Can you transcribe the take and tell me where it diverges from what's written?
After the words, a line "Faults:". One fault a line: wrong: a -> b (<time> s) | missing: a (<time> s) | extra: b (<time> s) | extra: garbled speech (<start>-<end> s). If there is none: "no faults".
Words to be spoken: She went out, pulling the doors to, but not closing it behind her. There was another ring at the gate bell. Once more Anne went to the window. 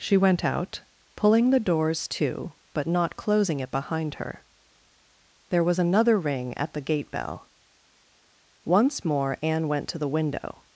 She went out, pulling the doors to, but not closing it behind her. There was another ring at the gate bell. Once more Anne went to the window.
Faults:
no faults